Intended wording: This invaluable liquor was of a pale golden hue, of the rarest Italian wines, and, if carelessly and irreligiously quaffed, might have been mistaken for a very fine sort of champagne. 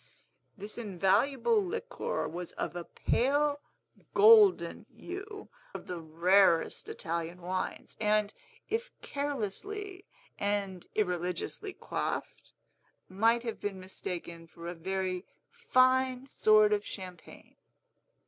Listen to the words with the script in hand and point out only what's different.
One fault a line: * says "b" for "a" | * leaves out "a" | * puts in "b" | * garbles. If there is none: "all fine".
all fine